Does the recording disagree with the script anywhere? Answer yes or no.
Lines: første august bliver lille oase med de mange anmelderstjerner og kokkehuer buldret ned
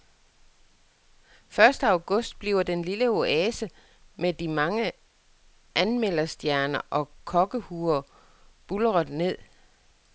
yes